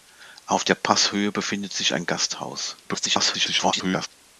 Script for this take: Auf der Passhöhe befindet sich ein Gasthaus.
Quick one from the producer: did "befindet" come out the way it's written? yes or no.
yes